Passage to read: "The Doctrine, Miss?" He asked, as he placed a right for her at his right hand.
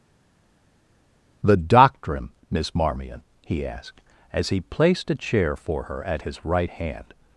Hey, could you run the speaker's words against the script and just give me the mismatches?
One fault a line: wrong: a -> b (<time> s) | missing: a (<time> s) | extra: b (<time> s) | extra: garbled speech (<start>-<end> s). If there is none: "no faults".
extra: Marmion (2.7 s)
wrong: right -> chair (5.2 s)